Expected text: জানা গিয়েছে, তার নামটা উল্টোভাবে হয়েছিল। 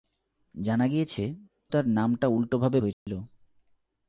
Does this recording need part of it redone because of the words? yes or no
no